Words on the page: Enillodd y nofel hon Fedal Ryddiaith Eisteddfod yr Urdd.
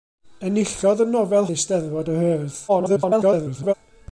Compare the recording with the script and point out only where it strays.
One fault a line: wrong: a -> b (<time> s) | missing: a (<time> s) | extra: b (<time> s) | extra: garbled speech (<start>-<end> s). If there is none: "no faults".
missing: hon Fedal Ryddiaith (1.5 s)
extra: garbled speech (2.7-3.7 s)